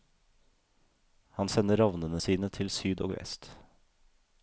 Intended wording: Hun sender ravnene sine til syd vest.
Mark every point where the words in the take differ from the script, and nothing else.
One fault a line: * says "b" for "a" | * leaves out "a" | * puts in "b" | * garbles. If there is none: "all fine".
* says "Han" for "Hun"
* puts in "og"